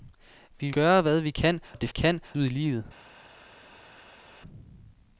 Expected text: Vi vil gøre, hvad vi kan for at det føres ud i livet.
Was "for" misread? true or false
true